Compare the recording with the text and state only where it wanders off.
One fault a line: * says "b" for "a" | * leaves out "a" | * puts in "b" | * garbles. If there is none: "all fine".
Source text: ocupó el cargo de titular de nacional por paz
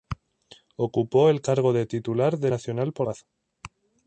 all fine